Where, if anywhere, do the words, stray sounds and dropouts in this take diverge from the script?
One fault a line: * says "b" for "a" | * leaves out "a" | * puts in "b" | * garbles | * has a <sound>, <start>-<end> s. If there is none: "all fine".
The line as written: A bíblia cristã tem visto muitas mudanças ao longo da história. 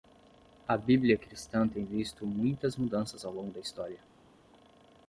all fine